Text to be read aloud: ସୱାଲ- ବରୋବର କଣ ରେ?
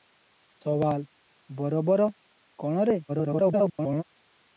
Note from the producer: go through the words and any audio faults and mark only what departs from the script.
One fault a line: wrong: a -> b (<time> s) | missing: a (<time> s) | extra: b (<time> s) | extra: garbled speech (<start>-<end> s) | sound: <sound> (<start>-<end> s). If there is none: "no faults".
extra: garbled speech (3.1-4.0 s)